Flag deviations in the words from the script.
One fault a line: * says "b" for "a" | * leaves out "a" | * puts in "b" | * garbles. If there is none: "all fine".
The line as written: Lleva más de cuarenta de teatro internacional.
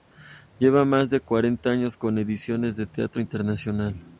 * puts in "años con ediciones"